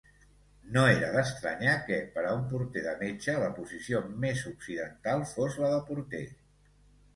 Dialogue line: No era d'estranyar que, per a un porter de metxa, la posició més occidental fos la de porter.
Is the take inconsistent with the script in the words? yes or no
no